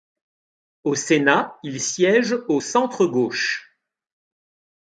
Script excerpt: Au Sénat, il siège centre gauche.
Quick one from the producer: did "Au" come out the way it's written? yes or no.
yes